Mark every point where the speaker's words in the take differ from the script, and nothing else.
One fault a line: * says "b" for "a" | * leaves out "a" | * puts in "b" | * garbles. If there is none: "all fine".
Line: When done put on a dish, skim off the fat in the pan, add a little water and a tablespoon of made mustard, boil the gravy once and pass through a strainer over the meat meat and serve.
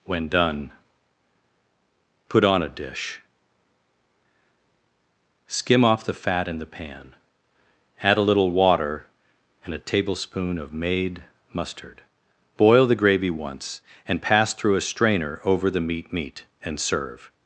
all fine